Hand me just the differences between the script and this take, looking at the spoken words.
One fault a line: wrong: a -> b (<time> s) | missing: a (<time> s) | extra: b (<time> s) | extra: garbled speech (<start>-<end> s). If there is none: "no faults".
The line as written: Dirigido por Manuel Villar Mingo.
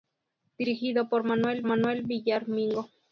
extra: Manuel (1.6 s)